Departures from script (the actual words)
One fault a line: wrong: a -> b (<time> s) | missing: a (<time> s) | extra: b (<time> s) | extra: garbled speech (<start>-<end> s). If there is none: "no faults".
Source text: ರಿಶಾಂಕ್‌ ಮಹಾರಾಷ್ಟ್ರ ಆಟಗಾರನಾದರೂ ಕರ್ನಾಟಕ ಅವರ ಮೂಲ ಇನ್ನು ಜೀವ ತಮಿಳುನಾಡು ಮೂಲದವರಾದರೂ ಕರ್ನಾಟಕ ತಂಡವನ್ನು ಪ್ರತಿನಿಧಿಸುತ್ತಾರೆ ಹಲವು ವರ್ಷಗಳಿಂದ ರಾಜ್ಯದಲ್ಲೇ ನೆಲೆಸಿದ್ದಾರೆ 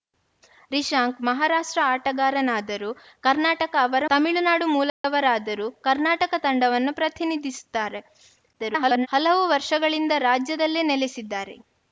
missing: ಮೂಲ ಇನ್ನು ಜೀವ (4.0 s)
extra: garbled speech (8.5-9.1 s)